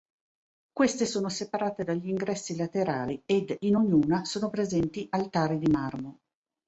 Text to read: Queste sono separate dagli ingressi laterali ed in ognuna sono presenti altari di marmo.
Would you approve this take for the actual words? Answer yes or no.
yes